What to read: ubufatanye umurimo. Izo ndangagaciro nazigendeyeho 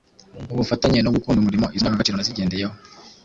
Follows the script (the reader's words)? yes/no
no